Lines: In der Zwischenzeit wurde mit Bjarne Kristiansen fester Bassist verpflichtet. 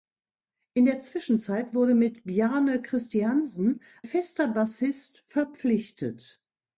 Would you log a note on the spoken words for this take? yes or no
no